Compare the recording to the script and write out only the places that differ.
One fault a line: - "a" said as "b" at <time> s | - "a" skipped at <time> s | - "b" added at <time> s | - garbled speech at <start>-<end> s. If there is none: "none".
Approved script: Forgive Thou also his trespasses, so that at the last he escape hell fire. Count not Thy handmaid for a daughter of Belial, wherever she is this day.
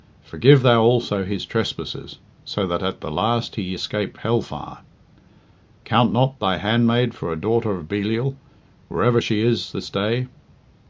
none